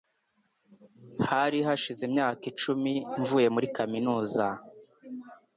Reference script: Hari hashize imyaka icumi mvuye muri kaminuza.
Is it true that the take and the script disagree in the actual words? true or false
false